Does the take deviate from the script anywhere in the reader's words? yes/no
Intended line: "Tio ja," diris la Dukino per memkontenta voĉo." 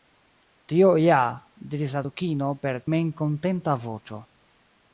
no